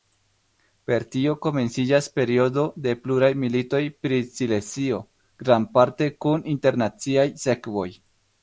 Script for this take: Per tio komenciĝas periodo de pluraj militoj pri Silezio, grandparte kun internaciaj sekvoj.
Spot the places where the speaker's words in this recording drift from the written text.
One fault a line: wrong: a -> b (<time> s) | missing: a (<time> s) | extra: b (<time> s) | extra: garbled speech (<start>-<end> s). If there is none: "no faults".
no faults